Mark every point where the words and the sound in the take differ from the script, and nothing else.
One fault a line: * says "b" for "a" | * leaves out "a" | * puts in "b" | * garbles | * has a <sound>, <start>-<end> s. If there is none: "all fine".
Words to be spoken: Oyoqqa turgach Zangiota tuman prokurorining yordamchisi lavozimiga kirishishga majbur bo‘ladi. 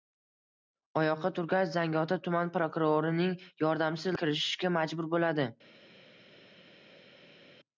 * leaves out "lavozimiga"